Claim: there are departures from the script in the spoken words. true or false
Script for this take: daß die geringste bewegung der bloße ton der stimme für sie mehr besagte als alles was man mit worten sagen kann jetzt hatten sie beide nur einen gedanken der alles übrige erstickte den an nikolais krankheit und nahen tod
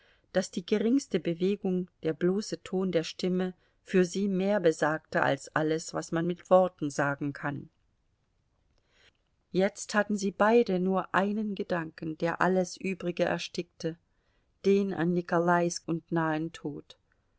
true